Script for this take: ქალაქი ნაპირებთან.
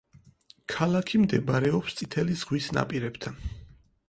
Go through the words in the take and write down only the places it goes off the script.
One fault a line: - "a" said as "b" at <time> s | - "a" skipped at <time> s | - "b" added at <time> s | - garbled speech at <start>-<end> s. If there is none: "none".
- "მდებარეობს წითელი ზღვის" added at 1.2 s